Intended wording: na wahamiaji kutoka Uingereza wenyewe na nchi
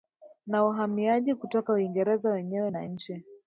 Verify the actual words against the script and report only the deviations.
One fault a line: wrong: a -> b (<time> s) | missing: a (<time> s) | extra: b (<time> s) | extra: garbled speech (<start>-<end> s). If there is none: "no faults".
no faults